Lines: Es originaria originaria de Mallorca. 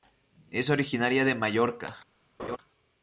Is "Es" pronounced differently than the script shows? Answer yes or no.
no